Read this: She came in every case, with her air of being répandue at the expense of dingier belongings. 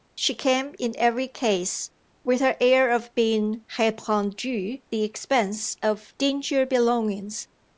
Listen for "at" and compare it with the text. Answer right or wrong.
wrong